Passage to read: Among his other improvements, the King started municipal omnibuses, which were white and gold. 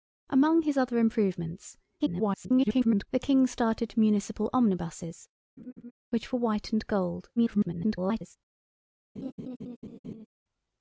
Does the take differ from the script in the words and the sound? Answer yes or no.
yes